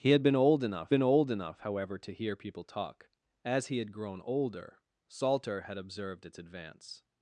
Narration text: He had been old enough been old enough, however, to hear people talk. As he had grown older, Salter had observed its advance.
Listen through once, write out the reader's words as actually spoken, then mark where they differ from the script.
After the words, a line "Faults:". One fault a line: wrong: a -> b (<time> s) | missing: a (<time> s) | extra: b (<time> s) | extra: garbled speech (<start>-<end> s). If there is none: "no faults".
He had been old enough been old enough, however, to hear people talk. As he had grown older, Salter had observed its advance.
Faults:
no faults